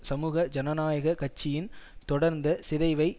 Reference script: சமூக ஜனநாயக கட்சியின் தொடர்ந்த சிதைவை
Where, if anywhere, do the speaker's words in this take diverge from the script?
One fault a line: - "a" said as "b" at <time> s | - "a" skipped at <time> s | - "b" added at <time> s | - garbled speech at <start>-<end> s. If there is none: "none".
none